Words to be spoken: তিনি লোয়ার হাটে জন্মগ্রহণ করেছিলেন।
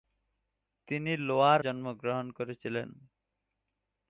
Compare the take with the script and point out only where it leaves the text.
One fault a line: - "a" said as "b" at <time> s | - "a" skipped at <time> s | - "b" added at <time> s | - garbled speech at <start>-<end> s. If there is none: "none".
- "হাটে" skipped at 1.6 s